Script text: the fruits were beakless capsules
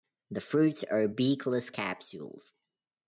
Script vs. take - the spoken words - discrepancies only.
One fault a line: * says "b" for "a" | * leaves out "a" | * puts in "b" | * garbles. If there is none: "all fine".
* says "are" for "were"